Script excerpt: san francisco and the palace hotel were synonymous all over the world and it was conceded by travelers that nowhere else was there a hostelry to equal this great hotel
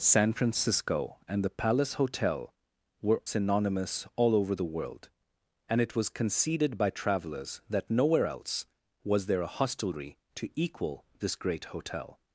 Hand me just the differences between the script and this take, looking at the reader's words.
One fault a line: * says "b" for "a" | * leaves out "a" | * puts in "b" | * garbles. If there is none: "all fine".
all fine